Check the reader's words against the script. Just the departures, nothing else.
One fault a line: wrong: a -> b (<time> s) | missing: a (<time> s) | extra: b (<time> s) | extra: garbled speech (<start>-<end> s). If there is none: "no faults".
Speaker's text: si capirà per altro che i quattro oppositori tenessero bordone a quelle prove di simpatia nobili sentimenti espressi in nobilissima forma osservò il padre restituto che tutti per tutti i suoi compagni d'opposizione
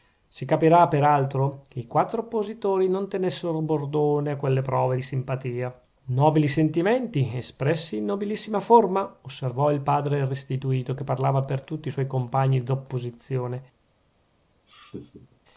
extra: non (2.9 s)
wrong: tutti -> parlava (11.0 s)